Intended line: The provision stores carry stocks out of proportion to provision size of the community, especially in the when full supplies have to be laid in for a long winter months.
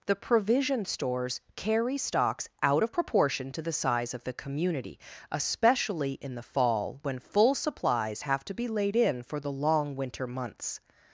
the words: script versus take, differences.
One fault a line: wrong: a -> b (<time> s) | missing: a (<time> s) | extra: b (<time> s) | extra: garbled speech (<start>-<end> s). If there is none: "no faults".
wrong: provision -> the (3.6 s)
extra: fall (6.4 s)
wrong: a -> the (9.4 s)